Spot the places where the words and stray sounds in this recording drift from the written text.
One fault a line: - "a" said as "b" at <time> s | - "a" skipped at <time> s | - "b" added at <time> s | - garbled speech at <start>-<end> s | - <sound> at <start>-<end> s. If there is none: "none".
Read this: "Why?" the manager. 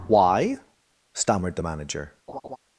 - "stammered" added at 1.1 s
- laugh at 2.3-2.6 s